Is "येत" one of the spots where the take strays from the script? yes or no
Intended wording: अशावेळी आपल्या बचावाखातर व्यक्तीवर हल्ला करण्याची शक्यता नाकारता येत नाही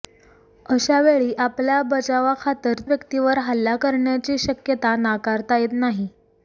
no